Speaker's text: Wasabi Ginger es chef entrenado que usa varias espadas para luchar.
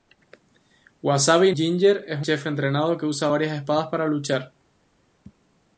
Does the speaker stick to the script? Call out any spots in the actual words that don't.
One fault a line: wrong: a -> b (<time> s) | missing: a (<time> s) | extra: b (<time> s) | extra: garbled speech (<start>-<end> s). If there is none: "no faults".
no faults